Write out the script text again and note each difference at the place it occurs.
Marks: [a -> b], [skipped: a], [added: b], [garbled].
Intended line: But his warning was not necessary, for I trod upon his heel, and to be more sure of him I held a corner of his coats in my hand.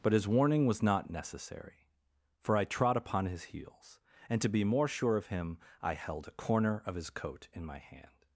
But his warning was not necessary, for I trod upon his [heel, -> heels] and to be more sure of him I held a corner of his [coats -> coat] in my hand.